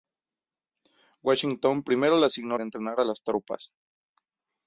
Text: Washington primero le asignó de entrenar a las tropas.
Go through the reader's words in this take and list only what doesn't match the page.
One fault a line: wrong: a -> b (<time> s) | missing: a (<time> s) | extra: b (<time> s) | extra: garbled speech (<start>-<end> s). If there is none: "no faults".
no faults